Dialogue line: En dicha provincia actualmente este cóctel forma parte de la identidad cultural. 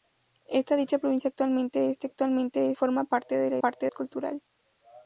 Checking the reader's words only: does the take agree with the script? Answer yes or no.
no